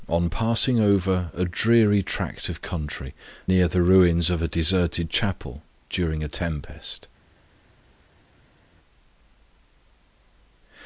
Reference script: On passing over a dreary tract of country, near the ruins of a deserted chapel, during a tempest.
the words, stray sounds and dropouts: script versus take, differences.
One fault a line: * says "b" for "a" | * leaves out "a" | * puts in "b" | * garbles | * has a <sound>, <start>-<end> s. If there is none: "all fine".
all fine